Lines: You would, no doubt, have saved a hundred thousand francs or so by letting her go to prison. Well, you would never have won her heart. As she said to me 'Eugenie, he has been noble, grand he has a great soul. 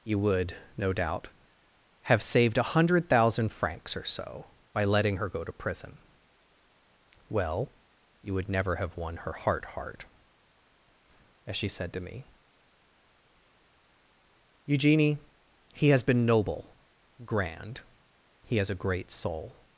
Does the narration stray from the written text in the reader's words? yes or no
yes